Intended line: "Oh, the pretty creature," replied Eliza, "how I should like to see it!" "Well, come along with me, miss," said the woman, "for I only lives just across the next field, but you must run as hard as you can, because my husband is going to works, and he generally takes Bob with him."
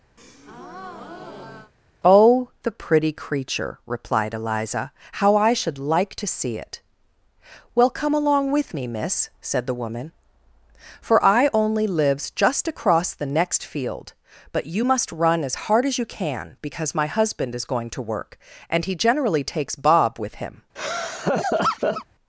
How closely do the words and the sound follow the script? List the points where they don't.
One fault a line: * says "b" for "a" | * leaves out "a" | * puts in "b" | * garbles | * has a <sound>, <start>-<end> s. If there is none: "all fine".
* has a breath, 0.2-1.7 s
* says "work" for "works"
* has a laugh, 20.8-22.1 s